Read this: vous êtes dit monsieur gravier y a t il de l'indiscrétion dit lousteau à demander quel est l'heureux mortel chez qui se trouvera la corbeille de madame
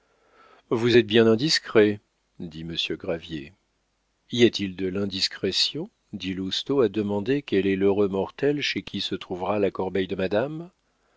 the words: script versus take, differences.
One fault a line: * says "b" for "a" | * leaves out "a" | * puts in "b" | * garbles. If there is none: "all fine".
* puts in "bien indiscret"